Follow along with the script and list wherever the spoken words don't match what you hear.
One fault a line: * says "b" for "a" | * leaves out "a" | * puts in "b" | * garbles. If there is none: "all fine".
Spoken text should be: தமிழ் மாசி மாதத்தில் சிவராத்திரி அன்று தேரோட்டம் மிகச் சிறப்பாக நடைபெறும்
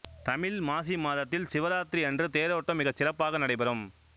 all fine